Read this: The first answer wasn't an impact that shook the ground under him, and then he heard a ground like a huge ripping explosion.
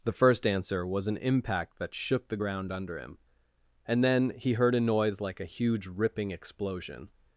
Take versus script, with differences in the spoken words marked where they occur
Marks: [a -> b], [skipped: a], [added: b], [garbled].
The first answer [wasn't -> was] an impact that shook the ground under him, and then he heard a [ground -> noise] like a huge ripping explosion.